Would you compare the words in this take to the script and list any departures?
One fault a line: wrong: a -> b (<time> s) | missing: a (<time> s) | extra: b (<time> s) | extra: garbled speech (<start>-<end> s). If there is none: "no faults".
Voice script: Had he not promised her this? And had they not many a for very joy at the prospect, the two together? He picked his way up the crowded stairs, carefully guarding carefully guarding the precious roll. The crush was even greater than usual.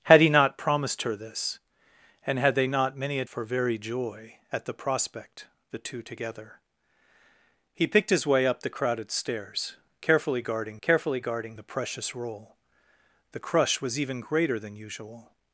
no faults